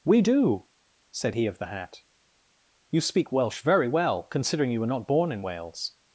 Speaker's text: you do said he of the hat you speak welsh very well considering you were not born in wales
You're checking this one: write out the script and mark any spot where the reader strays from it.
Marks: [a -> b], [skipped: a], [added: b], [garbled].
[you -> we] do said he of the hat you speak welsh very well considering you were not born in wales